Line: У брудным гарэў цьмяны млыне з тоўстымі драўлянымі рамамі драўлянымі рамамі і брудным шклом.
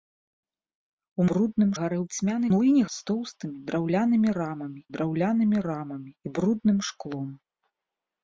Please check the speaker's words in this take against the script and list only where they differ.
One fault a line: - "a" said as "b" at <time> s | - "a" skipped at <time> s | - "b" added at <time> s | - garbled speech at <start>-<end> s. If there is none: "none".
none